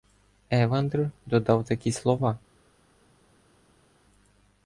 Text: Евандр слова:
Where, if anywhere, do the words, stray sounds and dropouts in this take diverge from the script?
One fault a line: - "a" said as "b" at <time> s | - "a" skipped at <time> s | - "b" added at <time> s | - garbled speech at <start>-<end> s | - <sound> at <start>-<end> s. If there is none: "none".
- "додав такі" added at 1.3 s